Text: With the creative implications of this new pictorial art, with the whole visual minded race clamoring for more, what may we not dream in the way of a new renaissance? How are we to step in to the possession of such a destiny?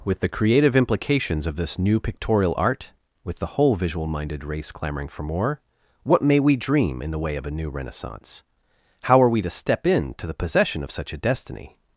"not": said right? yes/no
no